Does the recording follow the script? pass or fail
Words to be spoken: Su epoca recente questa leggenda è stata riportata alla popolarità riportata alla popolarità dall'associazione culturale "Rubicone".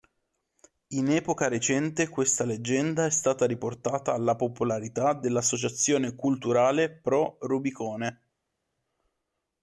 fail